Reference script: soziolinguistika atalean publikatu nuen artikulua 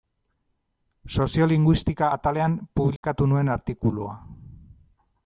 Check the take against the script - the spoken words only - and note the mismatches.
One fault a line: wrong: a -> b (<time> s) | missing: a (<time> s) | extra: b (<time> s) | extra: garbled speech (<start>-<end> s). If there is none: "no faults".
no faults